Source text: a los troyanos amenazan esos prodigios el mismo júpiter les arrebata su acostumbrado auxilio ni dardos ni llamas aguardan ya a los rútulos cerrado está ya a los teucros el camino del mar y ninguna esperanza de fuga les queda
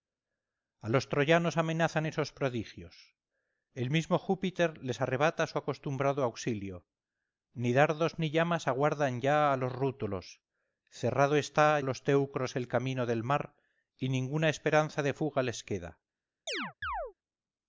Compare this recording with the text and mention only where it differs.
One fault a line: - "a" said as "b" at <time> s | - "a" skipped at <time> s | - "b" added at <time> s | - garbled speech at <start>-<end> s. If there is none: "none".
- "ya" skipped at 11.8 s